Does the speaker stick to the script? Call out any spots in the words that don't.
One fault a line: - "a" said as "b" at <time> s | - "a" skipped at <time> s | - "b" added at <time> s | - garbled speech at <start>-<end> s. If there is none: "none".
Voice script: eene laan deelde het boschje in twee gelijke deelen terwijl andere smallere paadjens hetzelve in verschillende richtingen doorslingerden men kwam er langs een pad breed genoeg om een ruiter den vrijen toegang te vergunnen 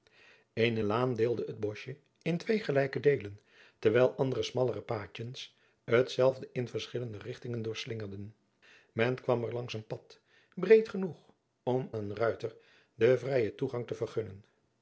none